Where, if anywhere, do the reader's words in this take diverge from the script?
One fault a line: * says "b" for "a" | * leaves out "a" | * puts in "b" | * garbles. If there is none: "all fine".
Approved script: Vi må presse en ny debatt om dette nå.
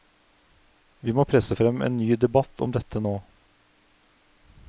* puts in "frem"